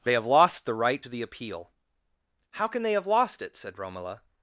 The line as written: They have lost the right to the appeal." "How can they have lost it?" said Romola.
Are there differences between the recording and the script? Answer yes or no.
no